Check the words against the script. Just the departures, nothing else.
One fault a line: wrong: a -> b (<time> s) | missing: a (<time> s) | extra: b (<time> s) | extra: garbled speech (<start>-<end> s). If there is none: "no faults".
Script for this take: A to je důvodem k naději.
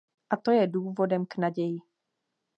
no faults